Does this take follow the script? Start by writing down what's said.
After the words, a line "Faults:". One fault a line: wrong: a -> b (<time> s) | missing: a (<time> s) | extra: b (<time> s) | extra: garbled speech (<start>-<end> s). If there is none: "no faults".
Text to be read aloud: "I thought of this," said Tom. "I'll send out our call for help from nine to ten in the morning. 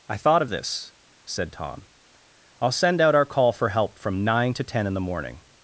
"I thought of this," said Tom. "I'll send out our call for help from nine to ten in the morning.
Faults:
no faults